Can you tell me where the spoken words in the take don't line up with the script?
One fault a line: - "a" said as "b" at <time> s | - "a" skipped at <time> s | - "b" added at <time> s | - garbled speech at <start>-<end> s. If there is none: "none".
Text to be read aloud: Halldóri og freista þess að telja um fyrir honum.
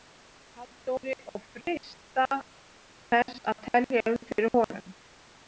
none